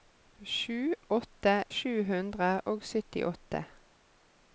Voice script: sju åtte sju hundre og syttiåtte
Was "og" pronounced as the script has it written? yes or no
yes